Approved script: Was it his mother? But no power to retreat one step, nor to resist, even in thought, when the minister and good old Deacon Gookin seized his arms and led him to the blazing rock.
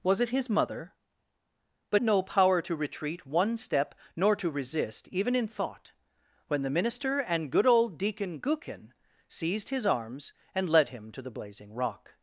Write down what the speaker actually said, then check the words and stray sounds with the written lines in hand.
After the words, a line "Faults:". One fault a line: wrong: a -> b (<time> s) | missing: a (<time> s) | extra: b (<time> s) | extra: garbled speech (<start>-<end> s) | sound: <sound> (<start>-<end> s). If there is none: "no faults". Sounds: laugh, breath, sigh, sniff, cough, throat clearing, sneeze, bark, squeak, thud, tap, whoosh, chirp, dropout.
Was it his mother? But no power to retreat one step, nor to resist, even in thought, when the minister and good old Deacon Gookin seized his arms and led him to the blazing rock.
Faults:
no faults